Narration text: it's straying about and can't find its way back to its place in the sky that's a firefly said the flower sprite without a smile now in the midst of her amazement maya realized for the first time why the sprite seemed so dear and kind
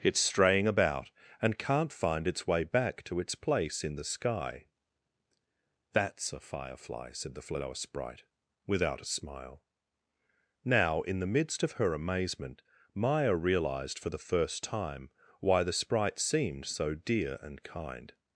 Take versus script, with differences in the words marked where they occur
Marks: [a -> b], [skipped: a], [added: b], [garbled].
it's straying about and can't find its way back to its place in the sky that's a firefly said the flower sprite without a smile now in the midst of her amazement maya realized for the first time why the sprite seemed so dear and kind